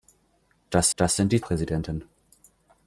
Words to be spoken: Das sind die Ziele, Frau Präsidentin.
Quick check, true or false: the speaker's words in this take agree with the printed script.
false